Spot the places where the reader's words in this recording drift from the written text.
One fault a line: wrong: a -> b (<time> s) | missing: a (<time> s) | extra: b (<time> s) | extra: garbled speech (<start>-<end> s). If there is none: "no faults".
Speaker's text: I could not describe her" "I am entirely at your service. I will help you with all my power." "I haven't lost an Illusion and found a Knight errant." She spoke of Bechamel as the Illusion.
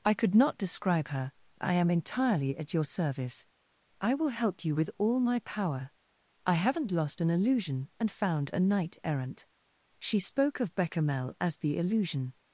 no faults